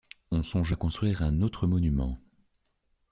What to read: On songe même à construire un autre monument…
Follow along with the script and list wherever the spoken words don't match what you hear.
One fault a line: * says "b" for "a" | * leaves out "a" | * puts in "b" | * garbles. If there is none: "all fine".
* leaves out "même"